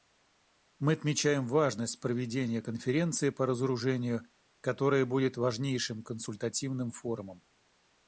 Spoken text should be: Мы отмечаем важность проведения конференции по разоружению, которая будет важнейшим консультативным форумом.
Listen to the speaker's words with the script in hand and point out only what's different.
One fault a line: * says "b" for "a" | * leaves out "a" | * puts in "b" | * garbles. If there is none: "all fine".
all fine